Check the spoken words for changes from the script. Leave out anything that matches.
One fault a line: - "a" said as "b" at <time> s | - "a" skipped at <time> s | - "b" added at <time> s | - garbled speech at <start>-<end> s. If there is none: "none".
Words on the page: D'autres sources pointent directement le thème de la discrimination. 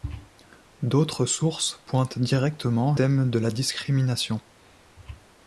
- "le" skipped at 3.0 s